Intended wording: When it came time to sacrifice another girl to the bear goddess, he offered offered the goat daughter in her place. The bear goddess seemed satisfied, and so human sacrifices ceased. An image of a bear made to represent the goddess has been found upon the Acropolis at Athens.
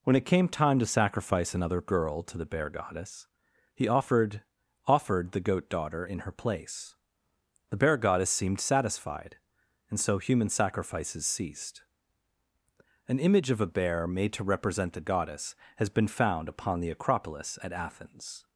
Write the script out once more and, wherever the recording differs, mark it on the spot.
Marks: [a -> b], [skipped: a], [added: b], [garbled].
When it came time to sacrifice another girl to the bear goddess, he offered offered the goat daughter in her place. The bear goddess seemed satisfied, and so human sacrifices ceased. An image of a bear made to represent the goddess has been found upon the Acropolis at Athens.